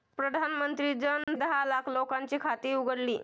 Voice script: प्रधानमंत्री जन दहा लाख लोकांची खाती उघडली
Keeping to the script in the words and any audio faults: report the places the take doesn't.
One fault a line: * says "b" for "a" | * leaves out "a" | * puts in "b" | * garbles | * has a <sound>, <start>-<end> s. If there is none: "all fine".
* has a dropout, 1.2-1.3 s